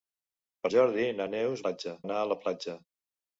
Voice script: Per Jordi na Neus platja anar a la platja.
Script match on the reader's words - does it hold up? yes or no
yes